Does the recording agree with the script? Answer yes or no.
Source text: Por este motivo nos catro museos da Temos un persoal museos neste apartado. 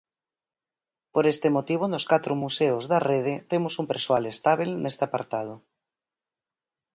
no